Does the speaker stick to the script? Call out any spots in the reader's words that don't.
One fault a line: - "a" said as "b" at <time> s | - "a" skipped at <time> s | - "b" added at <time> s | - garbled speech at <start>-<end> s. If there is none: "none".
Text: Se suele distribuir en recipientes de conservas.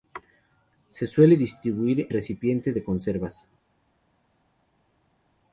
- "en" skipped at 2.1 s